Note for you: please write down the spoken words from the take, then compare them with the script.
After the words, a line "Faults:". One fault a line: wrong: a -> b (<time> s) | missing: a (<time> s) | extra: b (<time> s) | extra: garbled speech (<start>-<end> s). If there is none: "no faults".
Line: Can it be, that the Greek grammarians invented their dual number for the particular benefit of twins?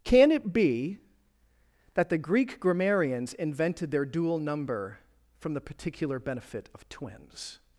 Can it be, that the Greek grammarians invented their dual number from the particular benefit of twins?
Faults:
wrong: for -> from (5.4 s)